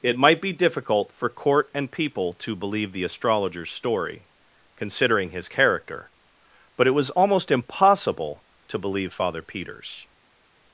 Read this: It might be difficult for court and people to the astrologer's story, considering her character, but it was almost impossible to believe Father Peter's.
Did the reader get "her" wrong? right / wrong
wrong